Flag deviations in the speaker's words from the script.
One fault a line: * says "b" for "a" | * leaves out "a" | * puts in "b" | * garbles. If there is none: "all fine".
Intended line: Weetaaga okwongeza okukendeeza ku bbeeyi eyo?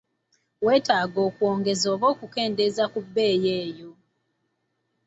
* puts in "oba"